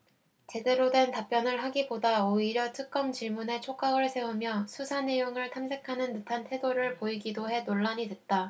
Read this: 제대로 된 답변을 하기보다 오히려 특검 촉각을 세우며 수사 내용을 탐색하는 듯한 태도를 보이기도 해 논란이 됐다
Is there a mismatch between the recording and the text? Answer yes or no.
yes